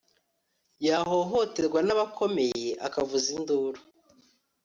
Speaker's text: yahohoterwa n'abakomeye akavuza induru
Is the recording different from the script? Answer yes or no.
no